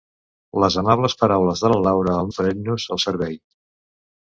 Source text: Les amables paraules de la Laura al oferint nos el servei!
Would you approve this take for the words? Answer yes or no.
yes